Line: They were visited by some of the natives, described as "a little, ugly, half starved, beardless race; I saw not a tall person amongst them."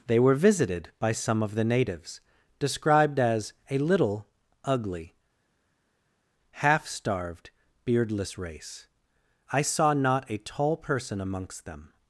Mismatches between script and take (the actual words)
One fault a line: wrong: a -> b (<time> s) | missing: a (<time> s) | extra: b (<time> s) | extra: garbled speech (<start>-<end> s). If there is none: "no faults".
no faults